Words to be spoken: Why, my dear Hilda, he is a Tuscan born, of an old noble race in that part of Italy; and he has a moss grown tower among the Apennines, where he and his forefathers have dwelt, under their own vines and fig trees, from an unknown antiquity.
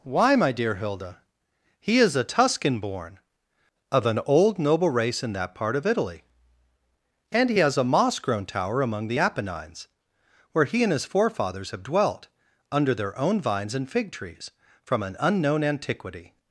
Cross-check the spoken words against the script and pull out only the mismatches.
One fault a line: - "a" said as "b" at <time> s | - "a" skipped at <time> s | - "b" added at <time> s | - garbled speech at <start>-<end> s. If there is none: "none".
none